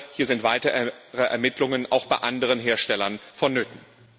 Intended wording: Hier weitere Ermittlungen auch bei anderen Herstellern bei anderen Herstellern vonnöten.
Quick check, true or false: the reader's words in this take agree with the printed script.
false